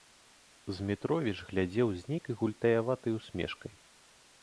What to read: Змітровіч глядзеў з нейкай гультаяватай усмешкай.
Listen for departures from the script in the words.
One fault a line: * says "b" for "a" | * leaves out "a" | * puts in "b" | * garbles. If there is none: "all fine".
all fine